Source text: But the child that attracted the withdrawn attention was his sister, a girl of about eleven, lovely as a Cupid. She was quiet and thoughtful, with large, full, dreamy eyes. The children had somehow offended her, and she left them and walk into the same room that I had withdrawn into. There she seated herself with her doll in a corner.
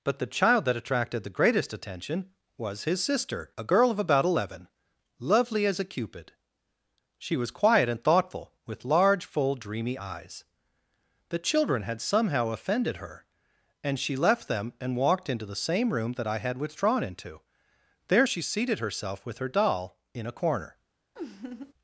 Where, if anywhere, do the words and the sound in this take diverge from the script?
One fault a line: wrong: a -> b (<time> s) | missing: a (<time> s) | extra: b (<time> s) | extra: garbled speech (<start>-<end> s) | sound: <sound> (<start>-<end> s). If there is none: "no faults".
wrong: withdrawn -> greatest (1.4 s)
wrong: walk -> walked (15.0 s)
sound: laugh (21.2-21.7 s)